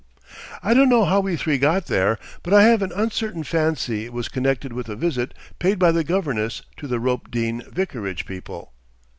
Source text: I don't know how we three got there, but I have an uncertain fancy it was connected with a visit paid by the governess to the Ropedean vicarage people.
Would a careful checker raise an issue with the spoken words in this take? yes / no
no